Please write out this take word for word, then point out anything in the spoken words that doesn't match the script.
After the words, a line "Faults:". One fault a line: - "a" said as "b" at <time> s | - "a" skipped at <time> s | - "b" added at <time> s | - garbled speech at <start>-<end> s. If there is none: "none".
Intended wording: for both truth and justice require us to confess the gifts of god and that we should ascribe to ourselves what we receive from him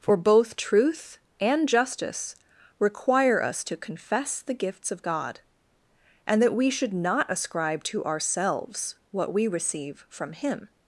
for both truth and justice require us to confess the gifts of god and that we should not ascribe to ourselves what we receive from him
Faults:
- "not" added at 6.9 s